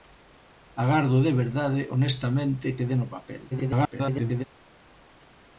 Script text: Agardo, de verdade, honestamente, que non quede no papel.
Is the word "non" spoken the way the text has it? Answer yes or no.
no